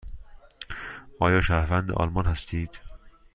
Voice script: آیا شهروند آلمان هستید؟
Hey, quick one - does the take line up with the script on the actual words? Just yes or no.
yes